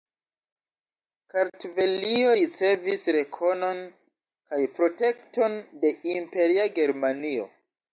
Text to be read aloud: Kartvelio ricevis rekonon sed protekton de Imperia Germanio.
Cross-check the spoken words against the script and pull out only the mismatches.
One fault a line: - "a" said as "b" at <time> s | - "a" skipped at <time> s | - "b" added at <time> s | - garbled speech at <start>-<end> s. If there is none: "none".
- "sed" said as "kaj" at 3.9 s